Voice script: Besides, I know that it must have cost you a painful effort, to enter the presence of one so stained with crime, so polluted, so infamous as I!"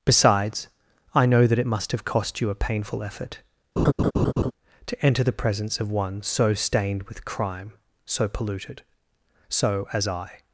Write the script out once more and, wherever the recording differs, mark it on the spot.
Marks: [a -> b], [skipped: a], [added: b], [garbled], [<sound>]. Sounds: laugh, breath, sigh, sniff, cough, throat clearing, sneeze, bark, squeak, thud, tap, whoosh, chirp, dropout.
Besides, I know that it must have cost you a painful effort, [laugh] to enter the presence of one so stained with crime, so polluted, so [skipped: infamous] as I!"